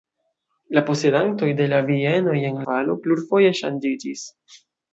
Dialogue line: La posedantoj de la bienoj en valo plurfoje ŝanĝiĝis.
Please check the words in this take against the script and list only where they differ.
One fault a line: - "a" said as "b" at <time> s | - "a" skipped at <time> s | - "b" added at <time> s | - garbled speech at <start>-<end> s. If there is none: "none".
none